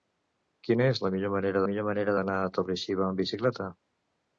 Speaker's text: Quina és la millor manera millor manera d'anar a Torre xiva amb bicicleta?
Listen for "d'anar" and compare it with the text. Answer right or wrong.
right